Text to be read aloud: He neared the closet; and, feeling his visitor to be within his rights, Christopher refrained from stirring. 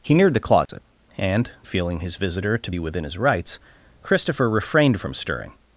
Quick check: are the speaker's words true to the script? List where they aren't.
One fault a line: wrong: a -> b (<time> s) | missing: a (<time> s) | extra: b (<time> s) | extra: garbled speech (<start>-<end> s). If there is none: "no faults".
no faults